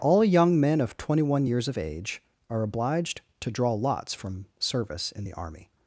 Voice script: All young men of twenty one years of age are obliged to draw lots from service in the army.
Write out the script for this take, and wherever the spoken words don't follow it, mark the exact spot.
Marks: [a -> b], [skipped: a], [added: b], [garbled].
All young men of twenty one years of age are obliged to draw lots from service in the army.